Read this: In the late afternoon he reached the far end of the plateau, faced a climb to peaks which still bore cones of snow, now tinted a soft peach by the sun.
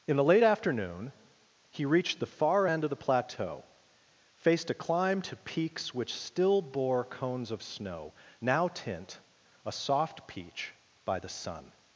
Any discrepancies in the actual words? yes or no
yes